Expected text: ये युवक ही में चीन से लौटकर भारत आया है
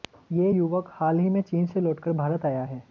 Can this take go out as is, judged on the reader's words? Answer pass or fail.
fail